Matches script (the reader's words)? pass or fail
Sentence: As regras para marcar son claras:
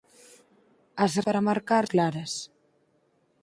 fail